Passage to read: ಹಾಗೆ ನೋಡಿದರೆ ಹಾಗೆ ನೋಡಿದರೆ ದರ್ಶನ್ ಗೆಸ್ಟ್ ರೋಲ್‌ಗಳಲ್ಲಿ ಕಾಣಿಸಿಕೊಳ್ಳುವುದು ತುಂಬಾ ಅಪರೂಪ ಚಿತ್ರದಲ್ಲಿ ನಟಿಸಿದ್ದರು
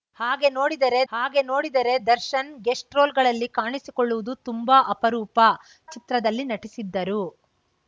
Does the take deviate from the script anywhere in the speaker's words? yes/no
no